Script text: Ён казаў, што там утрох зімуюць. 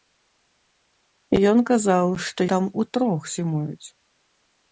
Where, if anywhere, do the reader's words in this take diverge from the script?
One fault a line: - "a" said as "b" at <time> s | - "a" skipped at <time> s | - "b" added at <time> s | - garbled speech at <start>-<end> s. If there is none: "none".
none